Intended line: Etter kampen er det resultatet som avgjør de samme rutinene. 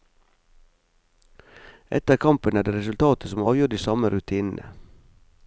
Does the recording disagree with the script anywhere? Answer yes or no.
no